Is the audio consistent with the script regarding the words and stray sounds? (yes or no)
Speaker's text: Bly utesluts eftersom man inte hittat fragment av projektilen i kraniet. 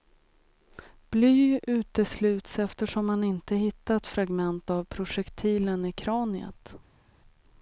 yes